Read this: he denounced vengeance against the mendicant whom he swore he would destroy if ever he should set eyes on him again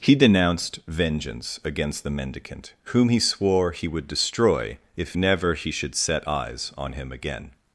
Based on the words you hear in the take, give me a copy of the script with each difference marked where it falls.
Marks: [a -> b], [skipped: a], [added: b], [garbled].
he denounced vengeance against the mendicant whom he swore he would destroy if [ever -> never] he should set eyes on him again